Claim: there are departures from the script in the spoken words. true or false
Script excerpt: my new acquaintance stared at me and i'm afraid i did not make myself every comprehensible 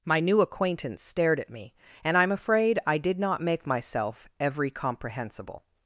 false